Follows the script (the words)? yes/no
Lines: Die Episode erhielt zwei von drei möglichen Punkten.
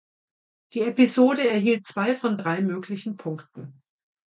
yes